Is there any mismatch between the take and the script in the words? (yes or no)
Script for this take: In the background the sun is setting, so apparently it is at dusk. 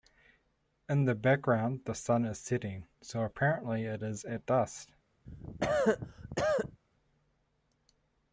no